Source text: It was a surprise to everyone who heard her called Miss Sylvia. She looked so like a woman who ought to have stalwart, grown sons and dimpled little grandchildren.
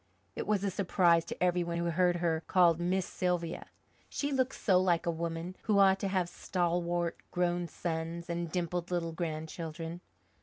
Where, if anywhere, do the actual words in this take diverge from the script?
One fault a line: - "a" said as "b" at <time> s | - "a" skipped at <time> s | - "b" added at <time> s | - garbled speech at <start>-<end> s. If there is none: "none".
none